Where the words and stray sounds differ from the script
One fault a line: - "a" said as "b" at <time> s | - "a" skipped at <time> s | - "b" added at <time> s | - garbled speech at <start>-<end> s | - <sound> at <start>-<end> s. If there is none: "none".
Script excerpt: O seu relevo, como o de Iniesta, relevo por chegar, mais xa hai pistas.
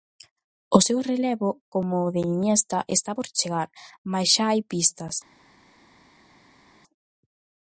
- "relevo" said as "está" at 3.0 s